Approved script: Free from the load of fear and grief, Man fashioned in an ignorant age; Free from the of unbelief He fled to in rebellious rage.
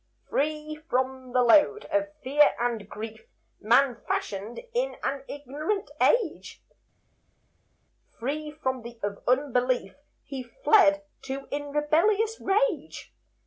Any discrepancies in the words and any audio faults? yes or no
no